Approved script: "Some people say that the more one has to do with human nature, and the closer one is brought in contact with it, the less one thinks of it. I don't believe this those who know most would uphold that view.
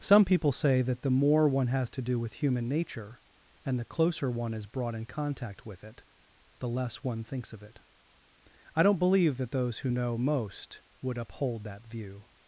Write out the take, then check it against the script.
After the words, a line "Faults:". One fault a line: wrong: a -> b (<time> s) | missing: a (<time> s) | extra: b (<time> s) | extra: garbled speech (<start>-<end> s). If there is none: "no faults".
"Some people say that the more one has to do with human nature, and the closer one is brought in contact with it, the less one thinks of it. I don't believe that those who know most would uphold that view.
Faults:
wrong: this -> that (9.4 s)